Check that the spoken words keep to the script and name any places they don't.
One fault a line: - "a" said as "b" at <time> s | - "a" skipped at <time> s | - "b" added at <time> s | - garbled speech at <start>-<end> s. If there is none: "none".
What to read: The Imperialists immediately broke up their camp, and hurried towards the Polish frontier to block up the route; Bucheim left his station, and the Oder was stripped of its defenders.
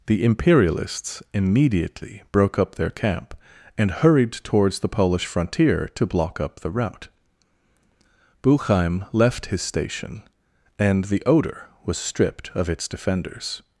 none